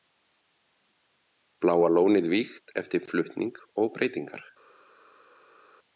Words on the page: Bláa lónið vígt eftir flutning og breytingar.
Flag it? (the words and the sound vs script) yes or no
no